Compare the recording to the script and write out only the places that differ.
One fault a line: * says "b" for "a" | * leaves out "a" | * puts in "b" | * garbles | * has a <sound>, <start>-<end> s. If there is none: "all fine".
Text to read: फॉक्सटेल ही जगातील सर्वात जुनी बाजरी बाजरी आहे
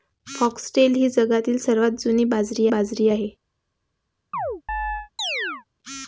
* has a chirp, 4.3-5.6 s